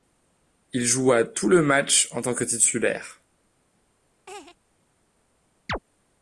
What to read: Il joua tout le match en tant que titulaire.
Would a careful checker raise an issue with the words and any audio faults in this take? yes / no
yes